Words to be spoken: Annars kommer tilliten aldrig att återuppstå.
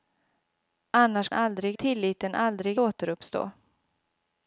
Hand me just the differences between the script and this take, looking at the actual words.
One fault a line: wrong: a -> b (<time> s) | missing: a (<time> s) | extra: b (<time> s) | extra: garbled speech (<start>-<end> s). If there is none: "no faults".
wrong: kommer -> aldrig (1.3 s)
missing: att (2.8 s)